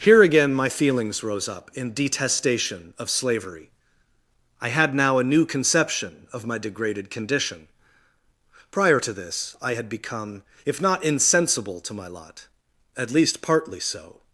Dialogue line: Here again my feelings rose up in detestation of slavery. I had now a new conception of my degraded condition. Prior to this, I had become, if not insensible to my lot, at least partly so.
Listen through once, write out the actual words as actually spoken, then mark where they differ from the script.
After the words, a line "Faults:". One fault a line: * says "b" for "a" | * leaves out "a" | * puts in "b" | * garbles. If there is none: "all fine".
Here again my feelings rose up in detestation of slavery. I had now a new conception of my degraded condition. Prior to this, I had become, if not insensible to my lot, at least partly so.
Faults:
all fine